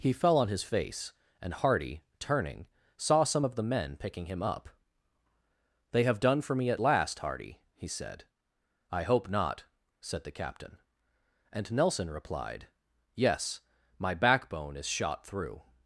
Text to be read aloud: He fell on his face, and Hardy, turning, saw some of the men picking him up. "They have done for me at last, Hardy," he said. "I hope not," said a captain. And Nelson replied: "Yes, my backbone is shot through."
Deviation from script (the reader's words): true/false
true